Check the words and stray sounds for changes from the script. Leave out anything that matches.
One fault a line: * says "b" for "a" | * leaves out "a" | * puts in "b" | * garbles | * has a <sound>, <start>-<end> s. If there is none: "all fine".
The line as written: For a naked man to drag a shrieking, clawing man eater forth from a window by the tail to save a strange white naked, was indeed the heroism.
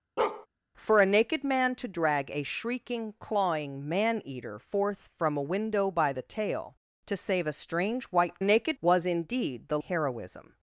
* has a bark, 0.2-0.5 s